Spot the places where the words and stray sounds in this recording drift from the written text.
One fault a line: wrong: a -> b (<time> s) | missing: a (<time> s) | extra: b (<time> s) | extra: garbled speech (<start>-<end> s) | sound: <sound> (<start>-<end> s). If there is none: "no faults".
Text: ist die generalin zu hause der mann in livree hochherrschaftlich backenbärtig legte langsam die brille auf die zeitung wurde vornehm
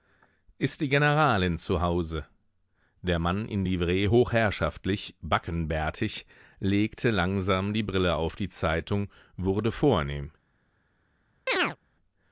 sound: chirp (11.5-11.8 s)